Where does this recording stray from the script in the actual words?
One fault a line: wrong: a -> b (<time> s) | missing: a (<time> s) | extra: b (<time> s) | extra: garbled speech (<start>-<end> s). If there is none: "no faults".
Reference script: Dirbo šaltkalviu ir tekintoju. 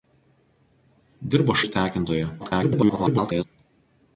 missing: šaltkalviu (1.6 s)
extra: garbled speech (2.4-3.4 s)